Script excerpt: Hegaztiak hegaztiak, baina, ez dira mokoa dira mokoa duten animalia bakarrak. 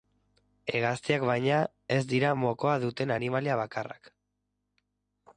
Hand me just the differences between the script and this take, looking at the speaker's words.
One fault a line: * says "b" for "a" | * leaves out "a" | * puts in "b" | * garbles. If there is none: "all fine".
* leaves out "hegaztiak"
* leaves out "dira mokoa"